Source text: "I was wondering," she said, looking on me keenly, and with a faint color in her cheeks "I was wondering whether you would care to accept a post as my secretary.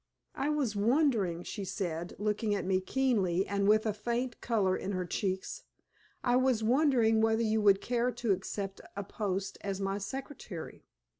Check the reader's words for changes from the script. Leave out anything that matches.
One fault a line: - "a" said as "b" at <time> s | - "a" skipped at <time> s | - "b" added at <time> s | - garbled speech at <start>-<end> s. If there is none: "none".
- "on" said as "at" at 2.5 s